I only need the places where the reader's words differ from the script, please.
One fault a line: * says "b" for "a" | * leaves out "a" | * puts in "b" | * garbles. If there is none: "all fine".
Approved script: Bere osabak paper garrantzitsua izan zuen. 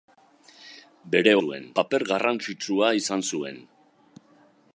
* says "zuen" for "osabak"